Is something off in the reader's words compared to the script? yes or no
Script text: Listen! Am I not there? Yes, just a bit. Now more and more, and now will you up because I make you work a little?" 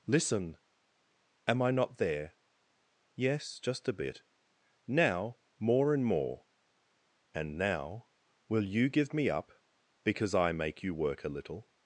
yes